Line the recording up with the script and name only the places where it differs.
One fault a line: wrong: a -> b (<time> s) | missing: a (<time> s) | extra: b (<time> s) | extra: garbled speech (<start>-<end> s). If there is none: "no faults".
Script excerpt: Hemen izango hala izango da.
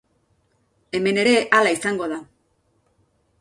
wrong: izango -> ere (1.2 s)